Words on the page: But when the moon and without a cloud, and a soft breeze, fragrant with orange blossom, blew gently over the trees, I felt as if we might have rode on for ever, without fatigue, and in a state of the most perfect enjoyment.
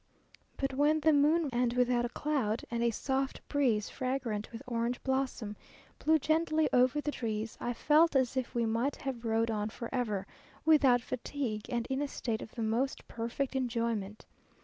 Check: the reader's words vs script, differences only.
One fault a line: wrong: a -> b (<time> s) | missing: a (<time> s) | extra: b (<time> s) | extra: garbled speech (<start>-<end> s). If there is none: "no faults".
no faults